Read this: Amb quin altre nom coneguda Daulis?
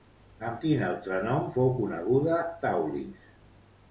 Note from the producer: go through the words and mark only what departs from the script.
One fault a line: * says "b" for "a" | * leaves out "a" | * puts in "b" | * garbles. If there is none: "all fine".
* puts in "fou"